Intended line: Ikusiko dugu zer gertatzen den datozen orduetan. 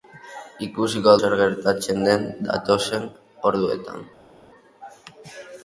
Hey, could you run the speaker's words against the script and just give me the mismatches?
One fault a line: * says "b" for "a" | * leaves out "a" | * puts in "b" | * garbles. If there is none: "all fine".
* leaves out "dugu"